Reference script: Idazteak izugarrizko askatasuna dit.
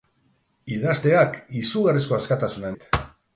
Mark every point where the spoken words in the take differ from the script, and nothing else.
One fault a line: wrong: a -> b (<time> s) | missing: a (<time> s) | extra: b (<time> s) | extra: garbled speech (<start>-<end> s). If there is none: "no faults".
no faults